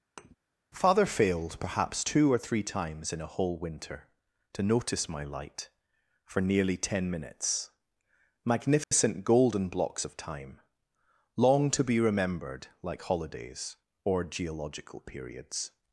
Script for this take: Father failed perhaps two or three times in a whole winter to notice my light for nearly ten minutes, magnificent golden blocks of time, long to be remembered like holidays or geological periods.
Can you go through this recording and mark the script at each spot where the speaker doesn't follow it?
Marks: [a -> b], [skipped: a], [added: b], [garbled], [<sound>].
[thud] Father failed perhaps two or three times in a whole winter to notice my light for nearly ten minutes, magnificent [dropout] golden blocks of time, long to be remembered like holidays or geological periods.